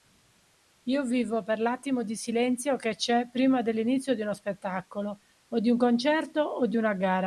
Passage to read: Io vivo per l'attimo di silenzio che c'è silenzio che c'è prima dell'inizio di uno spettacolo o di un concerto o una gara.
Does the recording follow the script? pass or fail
fail